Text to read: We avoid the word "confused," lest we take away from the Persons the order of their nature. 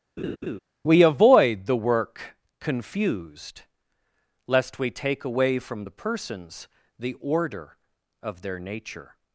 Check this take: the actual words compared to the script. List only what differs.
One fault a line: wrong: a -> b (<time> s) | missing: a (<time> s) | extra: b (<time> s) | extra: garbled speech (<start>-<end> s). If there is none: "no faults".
wrong: word -> work (1.8 s)